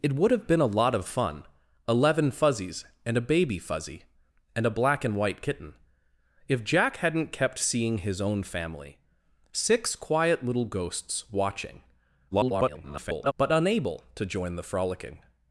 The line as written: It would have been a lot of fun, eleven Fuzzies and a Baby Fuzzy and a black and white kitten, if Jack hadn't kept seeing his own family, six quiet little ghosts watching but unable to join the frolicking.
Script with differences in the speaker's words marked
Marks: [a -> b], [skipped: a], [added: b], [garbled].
It would have been a lot of fun, eleven Fuzzies and a Baby Fuzzy and a black and white kitten, if Jack hadn't kept seeing his own family, six quiet little ghosts watching [garbled] but unable to join the frolicking.